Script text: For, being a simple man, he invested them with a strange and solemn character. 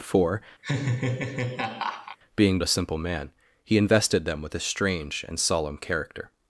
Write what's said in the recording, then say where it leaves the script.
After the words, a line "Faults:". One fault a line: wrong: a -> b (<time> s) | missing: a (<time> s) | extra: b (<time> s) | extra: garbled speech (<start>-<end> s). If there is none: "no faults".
For, being a simple man, he invested them with a strange and solemn character.
Faults:
no faults